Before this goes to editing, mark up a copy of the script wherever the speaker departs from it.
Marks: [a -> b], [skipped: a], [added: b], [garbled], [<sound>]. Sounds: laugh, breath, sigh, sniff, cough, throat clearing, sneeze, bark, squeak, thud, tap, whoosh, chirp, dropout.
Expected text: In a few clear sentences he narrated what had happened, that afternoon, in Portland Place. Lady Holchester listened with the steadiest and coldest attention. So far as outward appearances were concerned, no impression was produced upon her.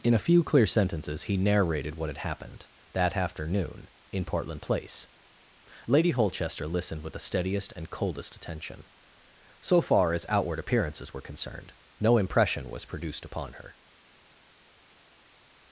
In a few clear sentences he narrated what had happened, that afternoon, in Portland Place. Lady Holchester listened with the steadiest and coldest attention. So far as outward appearances were concerned, no impression was produced upon her.